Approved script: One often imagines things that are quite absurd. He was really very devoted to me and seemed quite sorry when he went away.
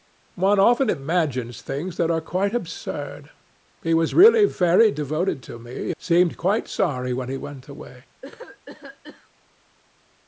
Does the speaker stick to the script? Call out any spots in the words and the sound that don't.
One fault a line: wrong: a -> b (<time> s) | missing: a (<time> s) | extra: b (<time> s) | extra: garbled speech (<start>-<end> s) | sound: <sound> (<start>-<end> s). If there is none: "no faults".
missing: and (5.9 s)
sound: cough (8.2-9.3 s)